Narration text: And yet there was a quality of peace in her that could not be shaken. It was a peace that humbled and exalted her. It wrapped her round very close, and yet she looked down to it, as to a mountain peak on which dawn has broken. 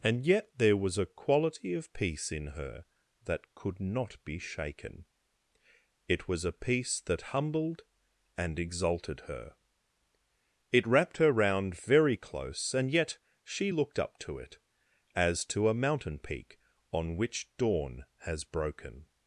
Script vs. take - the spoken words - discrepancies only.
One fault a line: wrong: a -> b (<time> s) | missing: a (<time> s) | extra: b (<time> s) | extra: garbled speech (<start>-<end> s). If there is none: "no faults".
wrong: down -> up (14.0 s)